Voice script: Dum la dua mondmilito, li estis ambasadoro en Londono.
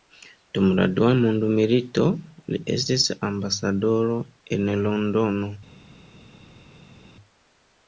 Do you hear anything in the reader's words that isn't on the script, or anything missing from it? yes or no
no